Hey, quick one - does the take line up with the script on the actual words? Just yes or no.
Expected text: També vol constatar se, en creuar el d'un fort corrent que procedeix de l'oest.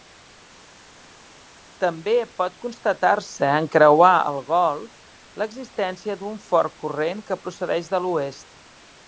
no